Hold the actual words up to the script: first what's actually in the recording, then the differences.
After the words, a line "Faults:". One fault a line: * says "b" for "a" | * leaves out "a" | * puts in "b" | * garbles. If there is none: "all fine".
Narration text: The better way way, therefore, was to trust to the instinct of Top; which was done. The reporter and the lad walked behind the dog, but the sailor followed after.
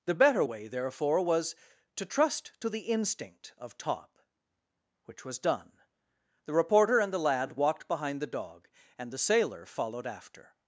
The better way, therefore, was to trust to the instinct of Top; which was done. The reporter and the lad walked behind the dog, and the sailor followed after.
Faults:
* leaves out "way"
* says "and" for "but"